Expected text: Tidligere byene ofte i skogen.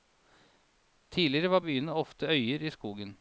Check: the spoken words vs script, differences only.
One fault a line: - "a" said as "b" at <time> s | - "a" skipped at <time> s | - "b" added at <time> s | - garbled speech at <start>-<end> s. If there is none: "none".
- "var" added at 1.5 s
- "øyer" added at 2.3 s